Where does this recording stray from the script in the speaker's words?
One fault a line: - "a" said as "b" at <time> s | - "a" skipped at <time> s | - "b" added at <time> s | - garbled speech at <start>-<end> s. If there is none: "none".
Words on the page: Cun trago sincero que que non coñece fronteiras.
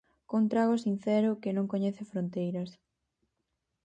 - "que" skipped at 1.6 s